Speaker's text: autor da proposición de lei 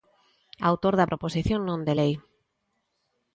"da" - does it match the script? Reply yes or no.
yes